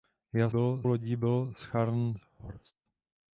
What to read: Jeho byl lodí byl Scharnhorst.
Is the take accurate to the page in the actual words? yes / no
yes